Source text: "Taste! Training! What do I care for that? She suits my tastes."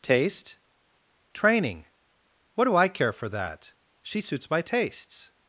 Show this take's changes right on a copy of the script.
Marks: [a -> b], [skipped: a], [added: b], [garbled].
"Taste! Training! What do I care for that? She suits my tastes."